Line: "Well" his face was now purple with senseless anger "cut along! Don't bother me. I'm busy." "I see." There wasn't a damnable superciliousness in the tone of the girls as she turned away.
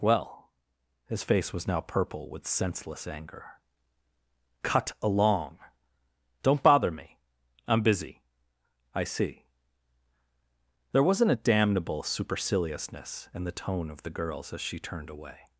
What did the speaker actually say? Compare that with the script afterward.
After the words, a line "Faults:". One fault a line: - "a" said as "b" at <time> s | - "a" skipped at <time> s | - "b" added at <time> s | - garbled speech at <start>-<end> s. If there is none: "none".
"Well" his face was now purple with senseless anger "cut along! Don't bother me. I'm busy." "I see." There wasn't a damnable superciliousness in the tone of the girls as she turned away.
Faults:
none